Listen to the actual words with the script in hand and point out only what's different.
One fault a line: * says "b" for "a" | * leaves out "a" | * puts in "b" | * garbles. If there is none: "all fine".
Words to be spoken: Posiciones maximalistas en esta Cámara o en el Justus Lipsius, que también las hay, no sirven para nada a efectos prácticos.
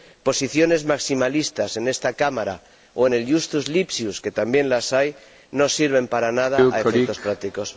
all fine